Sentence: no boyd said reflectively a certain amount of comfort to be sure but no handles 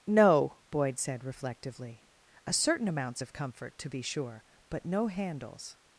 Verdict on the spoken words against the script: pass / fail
fail